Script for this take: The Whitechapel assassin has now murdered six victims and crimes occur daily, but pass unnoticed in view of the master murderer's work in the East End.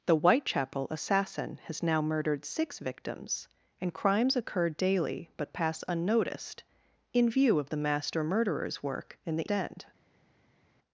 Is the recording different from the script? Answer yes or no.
yes